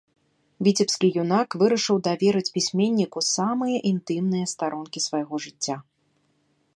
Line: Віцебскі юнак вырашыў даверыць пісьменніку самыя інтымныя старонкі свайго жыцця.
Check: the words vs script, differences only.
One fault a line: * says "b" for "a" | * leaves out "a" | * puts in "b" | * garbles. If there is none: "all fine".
all fine